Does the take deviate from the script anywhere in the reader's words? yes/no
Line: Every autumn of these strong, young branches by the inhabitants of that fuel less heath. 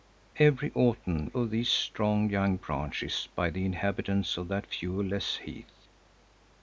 no